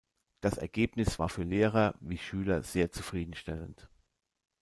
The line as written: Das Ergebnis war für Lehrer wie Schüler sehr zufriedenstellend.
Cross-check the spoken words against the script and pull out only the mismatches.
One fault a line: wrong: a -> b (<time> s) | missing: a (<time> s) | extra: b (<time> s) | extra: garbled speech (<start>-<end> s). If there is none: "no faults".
no faults